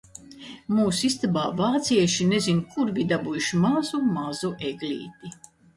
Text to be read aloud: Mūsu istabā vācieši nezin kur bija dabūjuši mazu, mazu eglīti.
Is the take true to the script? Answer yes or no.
yes